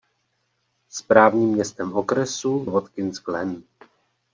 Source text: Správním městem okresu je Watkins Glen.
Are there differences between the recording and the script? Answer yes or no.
yes